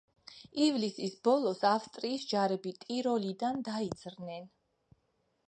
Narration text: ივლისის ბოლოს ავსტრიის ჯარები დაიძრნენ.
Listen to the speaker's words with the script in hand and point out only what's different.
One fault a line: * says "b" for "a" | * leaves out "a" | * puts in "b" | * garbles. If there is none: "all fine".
* puts in "ტიროლიდან"